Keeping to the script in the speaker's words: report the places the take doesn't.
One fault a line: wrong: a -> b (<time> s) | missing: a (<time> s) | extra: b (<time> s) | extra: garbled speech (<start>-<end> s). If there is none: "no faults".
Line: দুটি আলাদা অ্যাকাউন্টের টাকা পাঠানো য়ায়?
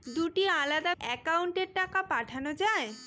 no faults